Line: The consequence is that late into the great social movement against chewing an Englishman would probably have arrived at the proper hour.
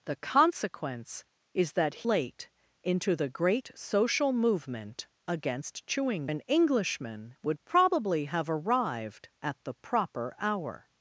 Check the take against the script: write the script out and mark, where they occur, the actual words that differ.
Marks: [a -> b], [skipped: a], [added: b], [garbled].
The consequence is that late into the great social movement against chewing an Englishman would probably have arrived at the proper hour.